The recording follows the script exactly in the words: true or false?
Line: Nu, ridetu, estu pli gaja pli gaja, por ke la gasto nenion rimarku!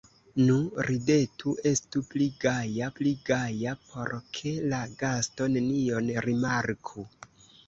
true